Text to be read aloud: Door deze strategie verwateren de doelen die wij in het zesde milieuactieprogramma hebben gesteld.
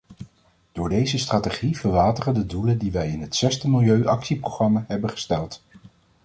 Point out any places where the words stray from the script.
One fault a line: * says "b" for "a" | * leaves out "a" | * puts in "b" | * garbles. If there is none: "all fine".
all fine